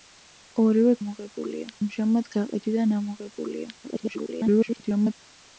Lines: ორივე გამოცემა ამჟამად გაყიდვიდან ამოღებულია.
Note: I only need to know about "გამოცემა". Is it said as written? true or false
false